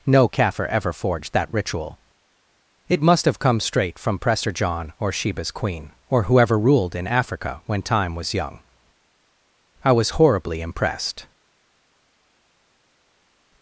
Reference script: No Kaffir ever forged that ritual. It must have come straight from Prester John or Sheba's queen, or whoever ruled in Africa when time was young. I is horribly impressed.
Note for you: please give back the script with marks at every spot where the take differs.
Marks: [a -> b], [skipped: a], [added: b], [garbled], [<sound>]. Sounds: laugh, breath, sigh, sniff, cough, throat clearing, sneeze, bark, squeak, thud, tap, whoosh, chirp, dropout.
No Kaffir ever forged that ritual. It must have come straight from Prester John or Sheba's queen, or whoever ruled in Africa when time was young. I [is -> was] horribly impressed.